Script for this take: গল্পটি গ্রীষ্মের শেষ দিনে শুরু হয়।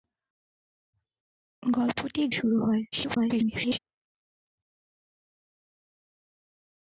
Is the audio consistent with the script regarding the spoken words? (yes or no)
no